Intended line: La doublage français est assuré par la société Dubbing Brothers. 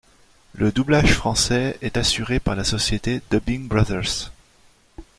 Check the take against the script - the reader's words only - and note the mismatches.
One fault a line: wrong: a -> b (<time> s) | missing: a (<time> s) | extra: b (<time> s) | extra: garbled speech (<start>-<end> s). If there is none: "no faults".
wrong: La -> Le (0.5 s)